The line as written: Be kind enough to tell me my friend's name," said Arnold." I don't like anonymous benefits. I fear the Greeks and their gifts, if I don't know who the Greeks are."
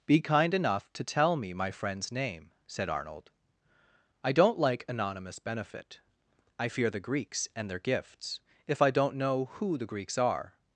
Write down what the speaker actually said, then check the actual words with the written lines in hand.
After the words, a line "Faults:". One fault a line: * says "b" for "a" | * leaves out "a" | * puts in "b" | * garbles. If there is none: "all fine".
Be kind enough to tell me my friend's name," said Arnold." I don't like anonymous benefit. I fear the Greeks and their gifts, if I don't know who the Greeks are."
Faults:
* says "benefit" for "benefits"